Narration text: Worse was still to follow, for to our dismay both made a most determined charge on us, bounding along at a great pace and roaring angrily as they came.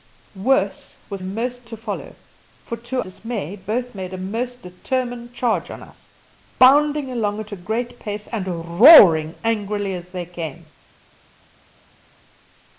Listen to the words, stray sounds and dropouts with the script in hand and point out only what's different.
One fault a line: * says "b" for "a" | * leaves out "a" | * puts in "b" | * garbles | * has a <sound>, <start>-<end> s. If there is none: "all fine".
* says "most" for "still"
* leaves out "our"